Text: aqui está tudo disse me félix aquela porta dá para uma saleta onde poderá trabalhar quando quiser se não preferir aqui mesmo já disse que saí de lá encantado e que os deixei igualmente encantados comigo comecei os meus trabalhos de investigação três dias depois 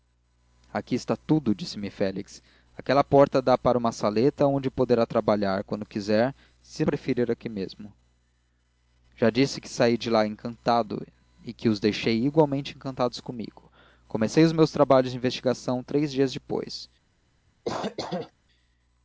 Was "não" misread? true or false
true